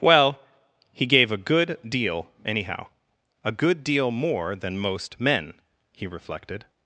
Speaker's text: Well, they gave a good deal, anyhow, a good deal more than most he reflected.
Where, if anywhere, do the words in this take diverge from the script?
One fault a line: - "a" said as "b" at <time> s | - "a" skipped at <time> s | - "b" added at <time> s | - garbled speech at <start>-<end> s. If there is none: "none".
- "they" said as "he" at 0.9 s
- "men" added at 5.2 s